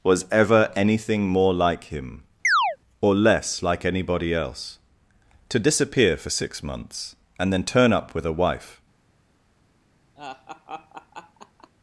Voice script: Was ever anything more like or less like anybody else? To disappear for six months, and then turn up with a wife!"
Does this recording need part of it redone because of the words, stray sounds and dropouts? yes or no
yes